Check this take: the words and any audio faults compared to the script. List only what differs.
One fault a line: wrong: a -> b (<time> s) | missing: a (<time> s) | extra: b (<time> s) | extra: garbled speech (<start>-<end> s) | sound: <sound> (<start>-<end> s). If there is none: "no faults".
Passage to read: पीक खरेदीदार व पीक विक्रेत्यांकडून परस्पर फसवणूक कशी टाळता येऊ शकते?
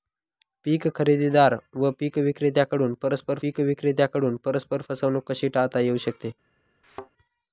extra: पीक विक्रेत्यांकडून परस्पर (3.4 s)
sound: thud (6.8-7.1 s)